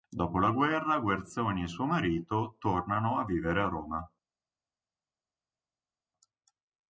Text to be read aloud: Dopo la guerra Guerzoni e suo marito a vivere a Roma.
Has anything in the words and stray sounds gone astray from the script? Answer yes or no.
yes